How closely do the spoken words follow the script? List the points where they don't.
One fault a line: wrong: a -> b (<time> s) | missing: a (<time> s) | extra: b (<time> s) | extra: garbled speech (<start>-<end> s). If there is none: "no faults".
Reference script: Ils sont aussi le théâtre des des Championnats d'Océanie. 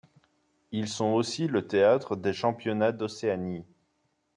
missing: des (2.3 s)